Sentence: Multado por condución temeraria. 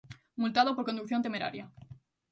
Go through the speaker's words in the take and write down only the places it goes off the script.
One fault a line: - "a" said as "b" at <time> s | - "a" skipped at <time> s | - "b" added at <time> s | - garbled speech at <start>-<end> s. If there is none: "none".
none